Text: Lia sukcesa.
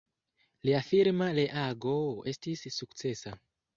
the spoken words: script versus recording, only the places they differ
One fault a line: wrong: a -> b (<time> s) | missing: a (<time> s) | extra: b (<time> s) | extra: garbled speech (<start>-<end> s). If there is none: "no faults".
extra: firma reago estis (0.9 s)